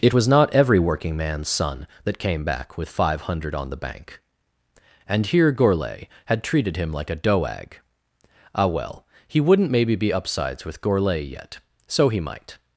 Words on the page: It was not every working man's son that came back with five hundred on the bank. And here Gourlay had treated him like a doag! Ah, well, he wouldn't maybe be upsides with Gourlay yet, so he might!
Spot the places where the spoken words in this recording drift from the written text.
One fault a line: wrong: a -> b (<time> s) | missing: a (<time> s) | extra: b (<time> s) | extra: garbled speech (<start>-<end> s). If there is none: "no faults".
no faults